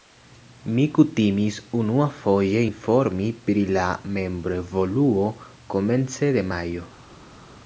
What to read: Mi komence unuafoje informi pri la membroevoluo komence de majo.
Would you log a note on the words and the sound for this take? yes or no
yes